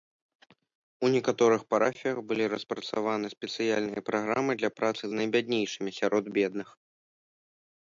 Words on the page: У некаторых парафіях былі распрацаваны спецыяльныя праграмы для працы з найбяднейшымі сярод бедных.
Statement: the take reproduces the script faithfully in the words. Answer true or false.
true